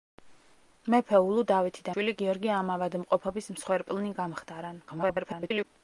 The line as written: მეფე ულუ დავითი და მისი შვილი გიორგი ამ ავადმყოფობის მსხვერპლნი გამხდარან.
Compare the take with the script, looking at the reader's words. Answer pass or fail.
fail